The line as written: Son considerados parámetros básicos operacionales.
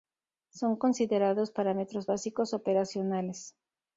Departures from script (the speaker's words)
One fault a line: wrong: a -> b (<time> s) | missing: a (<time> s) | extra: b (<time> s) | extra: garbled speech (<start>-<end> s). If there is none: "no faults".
no faults